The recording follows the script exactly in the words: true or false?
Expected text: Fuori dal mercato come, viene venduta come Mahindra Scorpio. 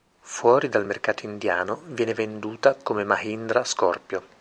false